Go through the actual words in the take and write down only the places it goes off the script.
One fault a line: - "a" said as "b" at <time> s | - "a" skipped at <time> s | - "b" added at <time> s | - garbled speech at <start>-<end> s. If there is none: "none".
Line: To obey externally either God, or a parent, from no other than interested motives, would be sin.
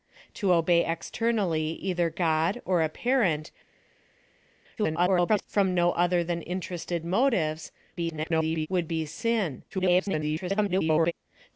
- garbled speech at 4.8-5.4 s
- garbled speech at 8.0-8.7 s
- garbled speech at 9.7-11.1 s